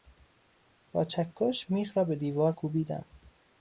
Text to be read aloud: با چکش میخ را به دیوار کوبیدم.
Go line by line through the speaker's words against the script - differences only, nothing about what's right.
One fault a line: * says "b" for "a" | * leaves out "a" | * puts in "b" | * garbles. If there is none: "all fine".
all fine